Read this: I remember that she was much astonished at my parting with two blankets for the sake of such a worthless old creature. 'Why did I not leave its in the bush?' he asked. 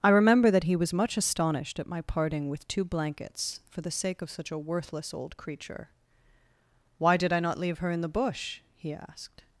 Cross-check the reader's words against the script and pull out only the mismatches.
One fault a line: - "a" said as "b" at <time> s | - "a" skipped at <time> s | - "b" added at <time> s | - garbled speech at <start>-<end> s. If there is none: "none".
- "she" said as "he" at 0.6 s
- "its" said as "her" at 7.8 s